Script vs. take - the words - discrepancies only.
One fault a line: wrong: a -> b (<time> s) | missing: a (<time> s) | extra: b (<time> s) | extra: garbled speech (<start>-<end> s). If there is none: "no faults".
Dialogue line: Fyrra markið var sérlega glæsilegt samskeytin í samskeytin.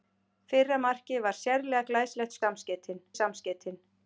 no faults